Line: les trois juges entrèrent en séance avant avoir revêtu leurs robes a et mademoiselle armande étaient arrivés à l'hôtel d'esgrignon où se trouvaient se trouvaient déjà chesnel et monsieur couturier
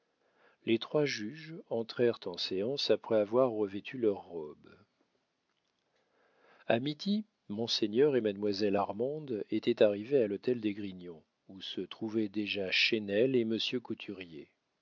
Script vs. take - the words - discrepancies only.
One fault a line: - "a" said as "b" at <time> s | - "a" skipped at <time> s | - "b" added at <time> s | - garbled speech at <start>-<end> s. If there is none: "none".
- "avant" said as "après" at 2.9 s
- "midi monseigneur" added at 6.8 s
- "se trouvaient" skipped at 12.3 s